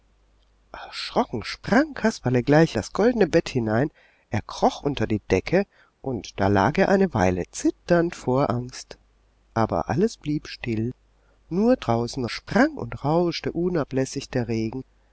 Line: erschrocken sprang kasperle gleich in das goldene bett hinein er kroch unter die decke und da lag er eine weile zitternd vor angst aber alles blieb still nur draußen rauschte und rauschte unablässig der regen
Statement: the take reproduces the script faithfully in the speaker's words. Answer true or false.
false